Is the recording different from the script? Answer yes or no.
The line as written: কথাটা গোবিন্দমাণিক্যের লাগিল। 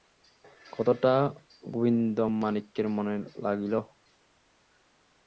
yes